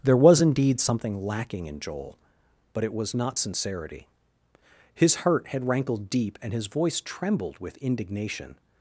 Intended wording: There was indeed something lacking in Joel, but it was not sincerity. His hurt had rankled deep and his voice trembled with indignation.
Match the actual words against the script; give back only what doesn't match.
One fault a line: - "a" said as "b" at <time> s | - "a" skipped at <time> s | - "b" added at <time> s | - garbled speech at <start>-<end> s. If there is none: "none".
none